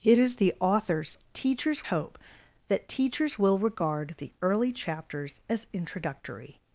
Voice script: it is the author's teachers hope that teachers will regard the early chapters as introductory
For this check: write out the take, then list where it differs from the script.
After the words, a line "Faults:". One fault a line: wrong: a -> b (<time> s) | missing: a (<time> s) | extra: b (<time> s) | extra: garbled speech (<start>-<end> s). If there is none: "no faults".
it is the author's teachers hope that teachers will regard the early chapters as introductory
Faults:
no faults